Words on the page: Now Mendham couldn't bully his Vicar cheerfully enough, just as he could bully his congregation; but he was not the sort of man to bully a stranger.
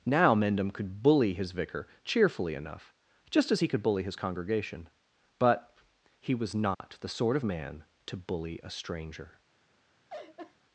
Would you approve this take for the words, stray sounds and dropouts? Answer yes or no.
no